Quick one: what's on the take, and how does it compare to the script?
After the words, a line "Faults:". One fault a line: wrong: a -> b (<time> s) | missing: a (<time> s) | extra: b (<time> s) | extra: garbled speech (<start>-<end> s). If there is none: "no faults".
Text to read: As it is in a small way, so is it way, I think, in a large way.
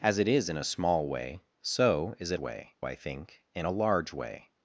As it is in a small way, so is it way, I think, in a large way.
Faults:
no faults